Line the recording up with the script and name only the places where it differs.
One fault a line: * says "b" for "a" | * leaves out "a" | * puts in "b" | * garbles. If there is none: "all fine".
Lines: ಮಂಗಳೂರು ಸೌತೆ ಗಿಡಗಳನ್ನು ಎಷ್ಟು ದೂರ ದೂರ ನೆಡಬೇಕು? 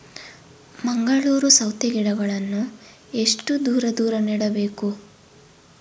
all fine